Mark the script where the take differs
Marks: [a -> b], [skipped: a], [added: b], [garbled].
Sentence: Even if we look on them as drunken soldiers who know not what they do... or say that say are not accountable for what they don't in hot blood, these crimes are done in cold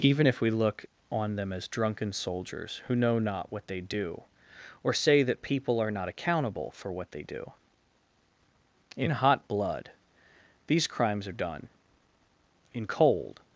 Even if we look on them as drunken soldiers who know not what they do... or say that [say -> people] are not accountable for what they [don't -> do] in hot blood, these crimes are done in cold